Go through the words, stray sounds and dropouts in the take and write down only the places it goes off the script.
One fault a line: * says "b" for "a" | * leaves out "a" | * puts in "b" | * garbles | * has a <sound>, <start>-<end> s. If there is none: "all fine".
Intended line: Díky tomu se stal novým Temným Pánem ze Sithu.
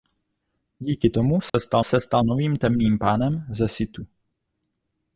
* has a dropout, 1.5-1.5 s
* puts in "se stal"